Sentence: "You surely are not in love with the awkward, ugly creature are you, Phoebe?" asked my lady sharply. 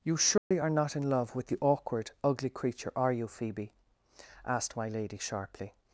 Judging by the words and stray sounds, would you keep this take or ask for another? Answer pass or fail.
fail